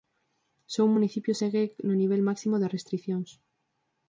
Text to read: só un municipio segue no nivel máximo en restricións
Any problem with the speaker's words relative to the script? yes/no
yes